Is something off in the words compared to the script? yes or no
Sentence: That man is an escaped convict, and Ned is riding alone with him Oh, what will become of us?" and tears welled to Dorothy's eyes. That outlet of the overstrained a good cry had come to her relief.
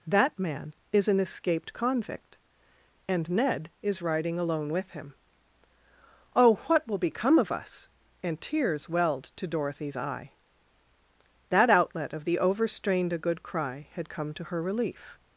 yes